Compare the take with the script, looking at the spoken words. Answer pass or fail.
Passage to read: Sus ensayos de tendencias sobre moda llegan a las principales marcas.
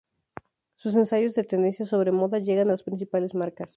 pass